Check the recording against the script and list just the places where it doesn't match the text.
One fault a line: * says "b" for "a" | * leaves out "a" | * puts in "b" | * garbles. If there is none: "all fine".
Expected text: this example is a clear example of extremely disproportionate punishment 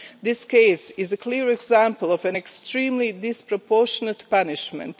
* says "case" for "example"
* puts in "an"